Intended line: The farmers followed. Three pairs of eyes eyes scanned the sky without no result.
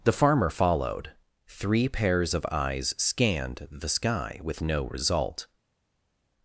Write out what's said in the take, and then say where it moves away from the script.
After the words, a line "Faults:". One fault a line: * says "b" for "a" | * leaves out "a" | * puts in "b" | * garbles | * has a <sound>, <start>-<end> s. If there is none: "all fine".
The farmer followed. Three pairs of eyes scanned the sky with no result.
Faults:
* says "farmer" for "farmers"
* leaves out "eyes"
* says "with" for "without"